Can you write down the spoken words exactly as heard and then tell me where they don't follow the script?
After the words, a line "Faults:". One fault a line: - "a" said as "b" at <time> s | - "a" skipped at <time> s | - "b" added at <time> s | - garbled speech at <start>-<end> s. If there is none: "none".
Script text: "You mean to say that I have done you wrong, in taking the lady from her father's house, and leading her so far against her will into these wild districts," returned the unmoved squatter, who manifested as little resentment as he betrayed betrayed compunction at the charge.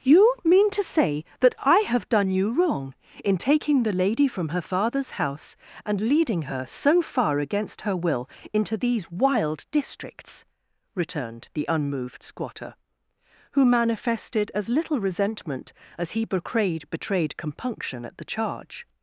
"You mean to say that I have done you wrong, in taking the lady from her father's house, and leading her so far against her will into these wild districts," returned the unmoved squatter, who manifested as little resentment as he betrayed betrayed compunction at the charge.
Faults:
none